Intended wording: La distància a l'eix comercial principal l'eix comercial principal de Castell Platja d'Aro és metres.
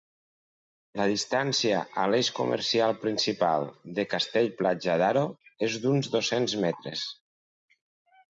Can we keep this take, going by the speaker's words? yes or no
no